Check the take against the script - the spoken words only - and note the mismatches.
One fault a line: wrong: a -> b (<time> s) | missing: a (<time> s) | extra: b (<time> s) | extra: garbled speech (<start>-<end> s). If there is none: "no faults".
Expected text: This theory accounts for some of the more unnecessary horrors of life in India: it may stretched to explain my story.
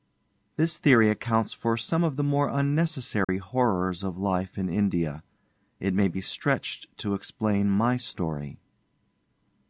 extra: be (6.1 s)